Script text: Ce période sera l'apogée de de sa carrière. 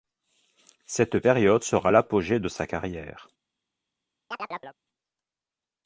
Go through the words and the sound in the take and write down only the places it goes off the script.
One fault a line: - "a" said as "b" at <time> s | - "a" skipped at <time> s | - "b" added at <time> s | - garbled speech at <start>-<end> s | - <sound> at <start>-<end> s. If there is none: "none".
- "Ce" said as "Cette" at 0.9 s
- "de" skipped at 2.5 s
- chirp at 4.3-4.8 s